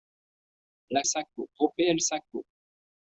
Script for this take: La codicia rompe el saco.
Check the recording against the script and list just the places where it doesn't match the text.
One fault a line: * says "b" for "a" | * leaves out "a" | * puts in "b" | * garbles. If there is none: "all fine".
* says "saco" for "codicia"